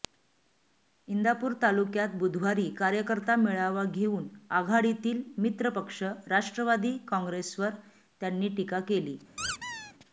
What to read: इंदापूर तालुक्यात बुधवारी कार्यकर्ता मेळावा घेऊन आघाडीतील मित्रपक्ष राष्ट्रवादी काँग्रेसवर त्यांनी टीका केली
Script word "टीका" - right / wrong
right